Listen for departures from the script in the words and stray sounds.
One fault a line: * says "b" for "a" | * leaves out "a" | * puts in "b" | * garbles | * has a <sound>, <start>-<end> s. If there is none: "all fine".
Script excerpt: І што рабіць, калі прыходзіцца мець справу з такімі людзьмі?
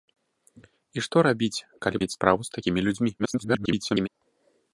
* leaves out "прыходзіцца"
* garbles